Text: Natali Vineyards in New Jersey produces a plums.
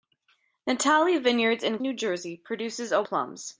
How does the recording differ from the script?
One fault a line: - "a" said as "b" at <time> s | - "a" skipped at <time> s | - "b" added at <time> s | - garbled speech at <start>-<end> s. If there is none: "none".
none